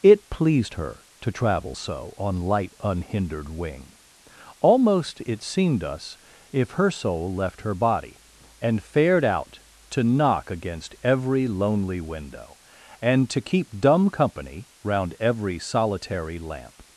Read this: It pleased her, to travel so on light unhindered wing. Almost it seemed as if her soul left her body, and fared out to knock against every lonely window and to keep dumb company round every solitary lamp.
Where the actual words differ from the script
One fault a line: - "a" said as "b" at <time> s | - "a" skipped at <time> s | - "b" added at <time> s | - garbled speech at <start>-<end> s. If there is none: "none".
- "as" said as "us" at 5.8 s